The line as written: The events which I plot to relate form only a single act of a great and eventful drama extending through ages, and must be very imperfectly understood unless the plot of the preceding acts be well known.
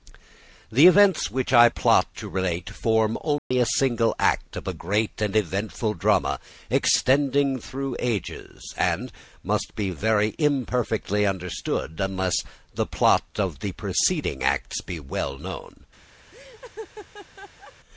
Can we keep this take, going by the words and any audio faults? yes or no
no